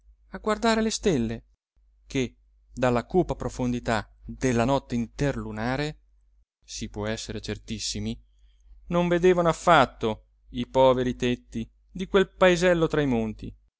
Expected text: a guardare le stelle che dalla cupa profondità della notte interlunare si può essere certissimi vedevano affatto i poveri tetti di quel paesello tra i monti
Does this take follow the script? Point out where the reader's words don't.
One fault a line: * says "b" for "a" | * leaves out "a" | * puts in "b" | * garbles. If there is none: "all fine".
* puts in "non"